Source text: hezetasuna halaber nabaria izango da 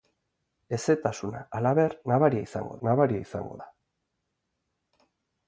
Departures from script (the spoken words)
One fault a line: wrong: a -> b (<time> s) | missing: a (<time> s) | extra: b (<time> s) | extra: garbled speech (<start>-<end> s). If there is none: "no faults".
extra: nabaria izango (2.9 s)